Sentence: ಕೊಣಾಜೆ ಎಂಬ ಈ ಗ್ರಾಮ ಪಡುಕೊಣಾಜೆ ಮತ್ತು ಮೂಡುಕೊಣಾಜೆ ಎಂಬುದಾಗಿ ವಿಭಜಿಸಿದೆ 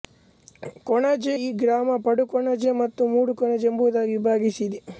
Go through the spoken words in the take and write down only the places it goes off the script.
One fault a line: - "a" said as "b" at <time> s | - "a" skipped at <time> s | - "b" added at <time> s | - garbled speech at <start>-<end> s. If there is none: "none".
- "ಎಂಬ" skipped at 1.3 s